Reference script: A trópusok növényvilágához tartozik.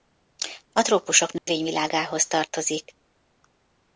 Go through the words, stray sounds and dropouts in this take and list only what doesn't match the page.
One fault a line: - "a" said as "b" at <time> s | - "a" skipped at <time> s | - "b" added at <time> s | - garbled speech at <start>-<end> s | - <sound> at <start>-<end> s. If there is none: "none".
- dropout at 1.4-1.5 s